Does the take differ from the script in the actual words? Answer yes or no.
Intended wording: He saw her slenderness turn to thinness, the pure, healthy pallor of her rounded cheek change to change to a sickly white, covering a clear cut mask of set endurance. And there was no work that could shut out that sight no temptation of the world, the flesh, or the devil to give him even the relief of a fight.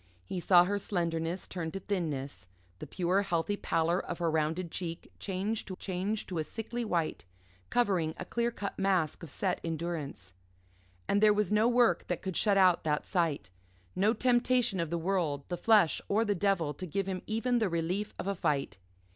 no